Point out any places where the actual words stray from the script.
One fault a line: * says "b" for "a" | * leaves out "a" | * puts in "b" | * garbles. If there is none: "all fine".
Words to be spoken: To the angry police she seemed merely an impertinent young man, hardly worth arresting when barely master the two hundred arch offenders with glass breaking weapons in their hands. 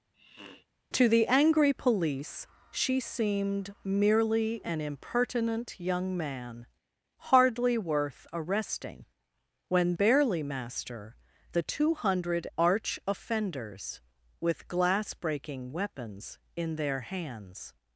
all fine